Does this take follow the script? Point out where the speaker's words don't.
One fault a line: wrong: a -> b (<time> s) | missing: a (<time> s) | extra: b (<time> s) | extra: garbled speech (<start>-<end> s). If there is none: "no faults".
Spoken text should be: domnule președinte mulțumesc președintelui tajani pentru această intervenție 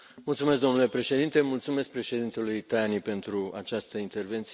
no faults